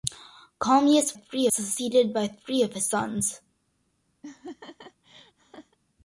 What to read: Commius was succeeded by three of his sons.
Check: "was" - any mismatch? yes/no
yes